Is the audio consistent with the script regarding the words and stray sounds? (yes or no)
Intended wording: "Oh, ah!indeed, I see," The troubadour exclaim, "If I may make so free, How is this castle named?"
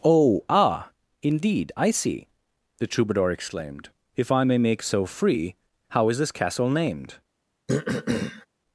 no